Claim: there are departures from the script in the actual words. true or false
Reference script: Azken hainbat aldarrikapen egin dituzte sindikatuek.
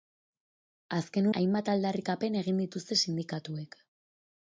false